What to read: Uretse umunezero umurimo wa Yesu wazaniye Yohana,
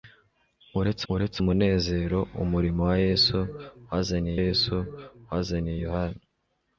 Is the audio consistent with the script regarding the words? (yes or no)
no